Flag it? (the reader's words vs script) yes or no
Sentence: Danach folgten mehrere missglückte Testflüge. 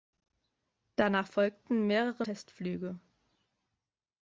yes